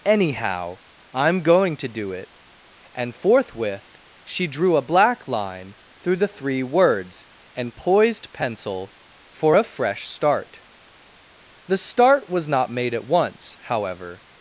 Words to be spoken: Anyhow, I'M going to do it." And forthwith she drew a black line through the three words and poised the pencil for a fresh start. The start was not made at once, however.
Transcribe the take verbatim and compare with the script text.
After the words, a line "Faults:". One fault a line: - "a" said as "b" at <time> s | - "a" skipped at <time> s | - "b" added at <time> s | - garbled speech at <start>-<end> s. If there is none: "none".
Anyhow, I'M going to do it." And forthwith she drew a black line through the three words and poised pencil for a fresh start. The start was not made at once, however.
Faults:
- "the" skipped at 8.3 s